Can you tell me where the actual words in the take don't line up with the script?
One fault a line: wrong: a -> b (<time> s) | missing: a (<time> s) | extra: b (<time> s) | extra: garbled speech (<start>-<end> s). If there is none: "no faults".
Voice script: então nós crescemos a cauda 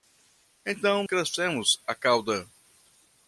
missing: nós (1.0 s)